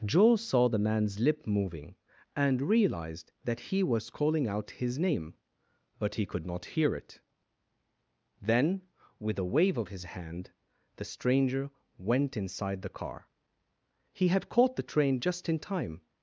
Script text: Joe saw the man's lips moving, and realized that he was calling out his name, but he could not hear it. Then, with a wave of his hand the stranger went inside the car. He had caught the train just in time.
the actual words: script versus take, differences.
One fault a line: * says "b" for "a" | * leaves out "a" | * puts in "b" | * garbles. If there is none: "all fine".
* says "lip" for "lips"